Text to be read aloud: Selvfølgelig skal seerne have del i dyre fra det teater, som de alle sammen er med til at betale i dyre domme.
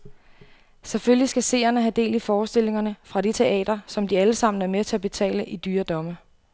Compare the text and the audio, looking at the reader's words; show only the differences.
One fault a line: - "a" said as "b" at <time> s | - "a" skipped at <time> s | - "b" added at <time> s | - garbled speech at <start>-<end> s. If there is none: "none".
- "dyre" said as "forestillingerne" at 2.2 s